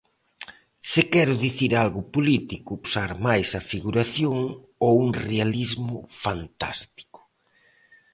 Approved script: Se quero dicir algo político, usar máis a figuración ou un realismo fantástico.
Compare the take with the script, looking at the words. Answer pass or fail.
pass